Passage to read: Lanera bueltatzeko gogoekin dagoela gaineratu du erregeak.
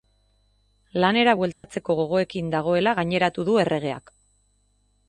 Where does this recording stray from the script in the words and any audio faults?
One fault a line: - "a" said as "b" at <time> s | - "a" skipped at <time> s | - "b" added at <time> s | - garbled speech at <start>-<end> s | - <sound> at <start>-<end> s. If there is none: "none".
- dropout at 1.5-1.6 s